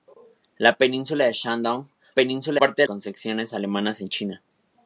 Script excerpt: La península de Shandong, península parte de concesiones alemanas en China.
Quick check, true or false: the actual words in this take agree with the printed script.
true